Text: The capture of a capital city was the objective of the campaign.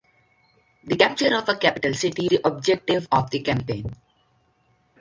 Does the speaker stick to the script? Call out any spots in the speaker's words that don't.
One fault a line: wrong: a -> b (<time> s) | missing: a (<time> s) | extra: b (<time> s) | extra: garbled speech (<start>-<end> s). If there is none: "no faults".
missing: was (2.3 s)